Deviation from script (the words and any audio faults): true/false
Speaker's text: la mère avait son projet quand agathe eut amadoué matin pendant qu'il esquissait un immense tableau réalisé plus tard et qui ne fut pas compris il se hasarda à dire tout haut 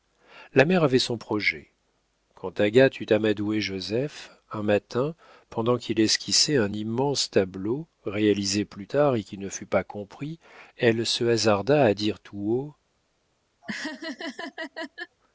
true